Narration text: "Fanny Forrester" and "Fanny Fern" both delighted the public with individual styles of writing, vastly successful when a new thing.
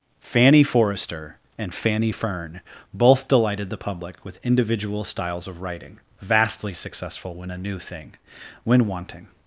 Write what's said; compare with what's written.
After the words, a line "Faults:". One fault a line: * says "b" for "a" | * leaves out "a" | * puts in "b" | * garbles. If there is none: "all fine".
"Fanny Forrester" and "Fanny Fern" both delighted the public with individual styles of writing, vastly successful when a new thing. When wanting
Faults:
* puts in "When wanting"